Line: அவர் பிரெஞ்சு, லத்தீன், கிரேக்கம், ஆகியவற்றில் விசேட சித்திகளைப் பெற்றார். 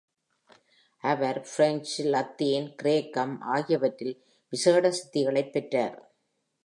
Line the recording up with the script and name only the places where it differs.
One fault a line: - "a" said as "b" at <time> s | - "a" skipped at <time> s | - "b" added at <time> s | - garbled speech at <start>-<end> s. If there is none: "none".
none